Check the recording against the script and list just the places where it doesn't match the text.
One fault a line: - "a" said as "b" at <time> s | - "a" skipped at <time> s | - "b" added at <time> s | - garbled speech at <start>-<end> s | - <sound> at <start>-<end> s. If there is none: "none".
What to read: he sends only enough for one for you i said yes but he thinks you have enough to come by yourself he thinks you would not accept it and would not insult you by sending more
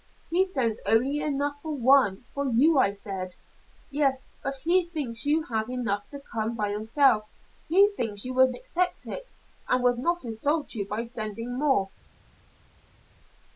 - "not" skipped at 8.5 s